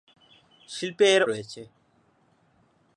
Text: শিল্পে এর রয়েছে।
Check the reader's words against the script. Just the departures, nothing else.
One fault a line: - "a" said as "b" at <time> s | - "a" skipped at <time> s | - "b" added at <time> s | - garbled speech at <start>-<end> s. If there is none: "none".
none